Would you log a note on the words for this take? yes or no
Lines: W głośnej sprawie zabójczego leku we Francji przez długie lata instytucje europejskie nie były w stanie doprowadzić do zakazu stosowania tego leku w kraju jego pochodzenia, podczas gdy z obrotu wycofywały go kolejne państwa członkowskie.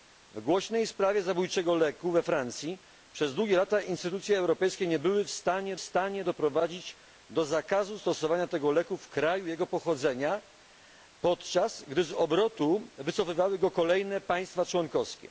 yes